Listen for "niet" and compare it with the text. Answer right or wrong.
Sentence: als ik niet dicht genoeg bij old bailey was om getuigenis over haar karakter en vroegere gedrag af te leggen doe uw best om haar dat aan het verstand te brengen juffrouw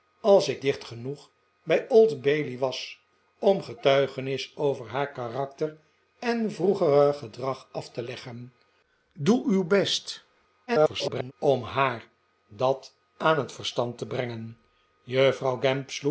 wrong